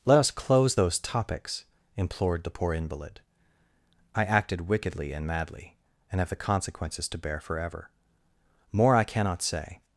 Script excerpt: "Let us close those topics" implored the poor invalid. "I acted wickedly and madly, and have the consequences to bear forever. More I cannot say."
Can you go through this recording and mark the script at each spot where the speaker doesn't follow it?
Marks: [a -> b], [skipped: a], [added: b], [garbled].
"Let us close those topics" implored the poor invalid. "I acted wickedly and madly, and have the consequences to bear forever. More I cannot say."